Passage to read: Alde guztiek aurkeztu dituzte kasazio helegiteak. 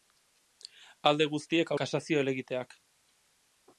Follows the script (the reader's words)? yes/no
no